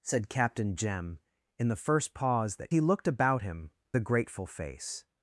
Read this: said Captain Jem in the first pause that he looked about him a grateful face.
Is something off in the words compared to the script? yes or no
no